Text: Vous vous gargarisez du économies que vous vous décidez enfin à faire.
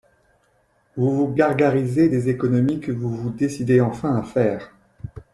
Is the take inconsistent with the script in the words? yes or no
yes